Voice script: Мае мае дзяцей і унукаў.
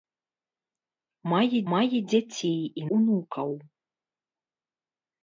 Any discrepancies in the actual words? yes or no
no